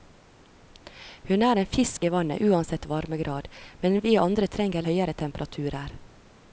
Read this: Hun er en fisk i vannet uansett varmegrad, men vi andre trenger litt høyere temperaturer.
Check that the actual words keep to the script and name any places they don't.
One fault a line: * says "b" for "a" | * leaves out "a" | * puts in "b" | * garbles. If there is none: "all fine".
* leaves out "litt"